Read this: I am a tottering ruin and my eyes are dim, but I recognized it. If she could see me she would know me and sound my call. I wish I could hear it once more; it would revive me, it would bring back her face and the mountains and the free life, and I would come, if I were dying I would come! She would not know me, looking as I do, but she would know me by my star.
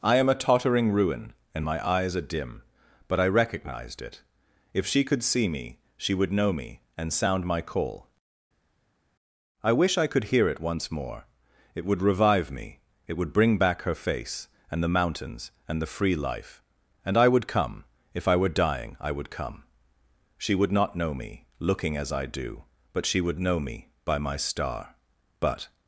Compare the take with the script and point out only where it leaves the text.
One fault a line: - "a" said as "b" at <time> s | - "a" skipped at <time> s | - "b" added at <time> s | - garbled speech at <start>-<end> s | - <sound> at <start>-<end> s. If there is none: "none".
- "But" added at 25.4 s